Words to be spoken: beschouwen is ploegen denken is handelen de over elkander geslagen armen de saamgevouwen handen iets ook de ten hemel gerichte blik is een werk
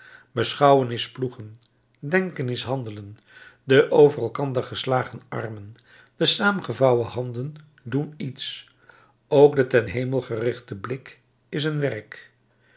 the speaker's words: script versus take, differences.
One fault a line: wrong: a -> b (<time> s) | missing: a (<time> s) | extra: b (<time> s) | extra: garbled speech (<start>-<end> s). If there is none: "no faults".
extra: doen (7.8 s)